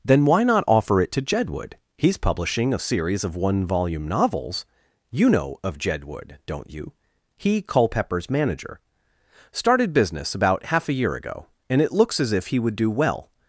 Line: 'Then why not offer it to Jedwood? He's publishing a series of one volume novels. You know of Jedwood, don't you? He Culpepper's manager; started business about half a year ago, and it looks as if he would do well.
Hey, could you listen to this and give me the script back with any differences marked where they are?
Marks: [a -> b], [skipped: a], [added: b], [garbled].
'Then why not offer it to Jedwood? He's publishing a series of one volume novels. You know of Jedwood, don't you? He Culpepper's manager; started business about half a year ago, and it looks as if he would do well.